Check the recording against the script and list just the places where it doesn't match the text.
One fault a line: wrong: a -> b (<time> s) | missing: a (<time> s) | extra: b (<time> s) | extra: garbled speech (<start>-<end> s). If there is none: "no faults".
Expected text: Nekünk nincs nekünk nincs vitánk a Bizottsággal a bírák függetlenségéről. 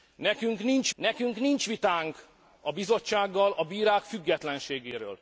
no faults